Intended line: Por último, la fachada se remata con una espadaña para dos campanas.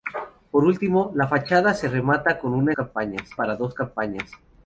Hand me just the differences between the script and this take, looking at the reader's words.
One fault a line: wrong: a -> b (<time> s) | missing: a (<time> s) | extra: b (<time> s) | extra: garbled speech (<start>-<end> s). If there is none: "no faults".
wrong: espadaña -> campanas (2.7 s)